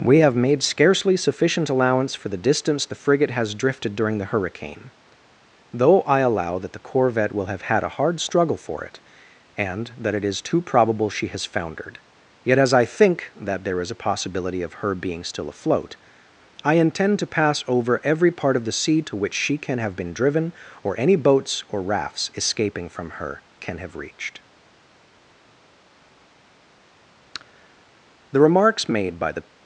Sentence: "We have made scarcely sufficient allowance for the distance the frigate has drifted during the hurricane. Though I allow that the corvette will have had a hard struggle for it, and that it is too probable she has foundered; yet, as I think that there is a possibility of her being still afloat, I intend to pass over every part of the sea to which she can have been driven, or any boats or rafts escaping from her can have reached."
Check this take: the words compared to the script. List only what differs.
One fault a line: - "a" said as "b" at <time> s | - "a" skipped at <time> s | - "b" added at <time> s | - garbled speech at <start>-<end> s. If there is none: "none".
- "The remarks made by the" added at 28.3 s